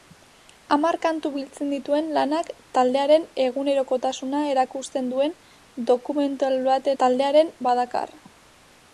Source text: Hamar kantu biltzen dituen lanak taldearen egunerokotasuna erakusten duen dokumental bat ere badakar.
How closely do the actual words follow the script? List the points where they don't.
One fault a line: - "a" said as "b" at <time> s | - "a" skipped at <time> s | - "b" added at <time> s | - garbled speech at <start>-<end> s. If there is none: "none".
- "ere" said as "taldearen" at 7.0 s